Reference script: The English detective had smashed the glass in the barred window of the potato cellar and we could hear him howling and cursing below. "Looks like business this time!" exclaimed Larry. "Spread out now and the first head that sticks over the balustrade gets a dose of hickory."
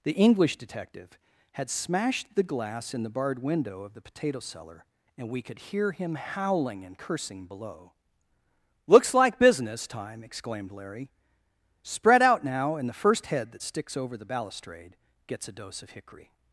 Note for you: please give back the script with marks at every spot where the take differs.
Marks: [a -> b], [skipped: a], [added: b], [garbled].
The English detective had smashed the glass in the barred window of the potato cellar and we could hear him howling and cursing below. "Looks like business [skipped: this] time!" exclaimed Larry. "Spread out now and the first head that sticks over the balustrade gets a dose of hickory."